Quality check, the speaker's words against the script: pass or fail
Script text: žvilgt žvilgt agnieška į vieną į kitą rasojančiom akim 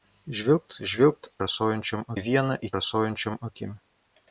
fail